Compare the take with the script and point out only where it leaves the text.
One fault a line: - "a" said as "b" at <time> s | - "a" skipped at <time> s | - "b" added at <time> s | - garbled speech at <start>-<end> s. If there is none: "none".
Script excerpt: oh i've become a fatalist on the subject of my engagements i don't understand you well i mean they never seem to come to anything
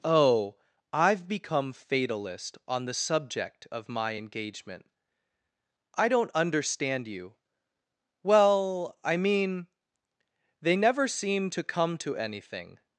- "a" skipped at 1.7 s
- "engagements" said as "engagement" at 4.1 s